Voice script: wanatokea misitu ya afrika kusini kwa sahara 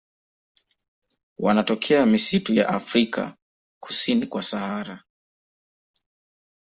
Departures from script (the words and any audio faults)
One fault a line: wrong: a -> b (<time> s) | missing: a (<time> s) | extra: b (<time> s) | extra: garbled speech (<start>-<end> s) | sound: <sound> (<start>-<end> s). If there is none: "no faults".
no faults